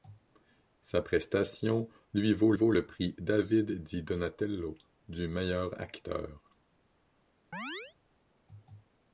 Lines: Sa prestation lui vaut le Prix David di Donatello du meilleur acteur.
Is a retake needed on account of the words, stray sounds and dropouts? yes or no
yes